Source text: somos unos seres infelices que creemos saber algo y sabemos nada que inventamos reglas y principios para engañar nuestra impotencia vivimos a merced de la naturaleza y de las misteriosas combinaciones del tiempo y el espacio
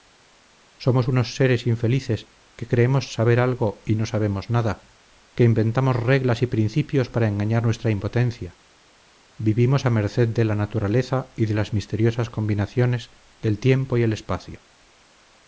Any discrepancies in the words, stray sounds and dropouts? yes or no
yes